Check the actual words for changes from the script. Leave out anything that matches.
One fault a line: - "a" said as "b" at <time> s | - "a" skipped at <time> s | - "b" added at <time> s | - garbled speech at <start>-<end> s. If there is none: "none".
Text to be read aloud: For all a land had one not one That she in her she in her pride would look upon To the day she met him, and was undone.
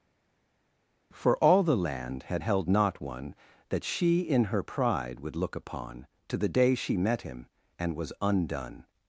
- "a" said as "the" at 1.6 s
- "one" said as "held" at 2.4 s
- "she in her" skipped at 4.6 s